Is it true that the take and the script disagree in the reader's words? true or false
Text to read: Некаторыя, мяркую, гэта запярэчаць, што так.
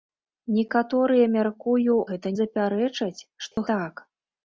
false